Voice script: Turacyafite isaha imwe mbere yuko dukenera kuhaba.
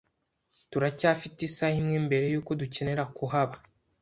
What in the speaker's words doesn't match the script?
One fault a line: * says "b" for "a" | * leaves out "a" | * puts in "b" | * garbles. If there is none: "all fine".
all fine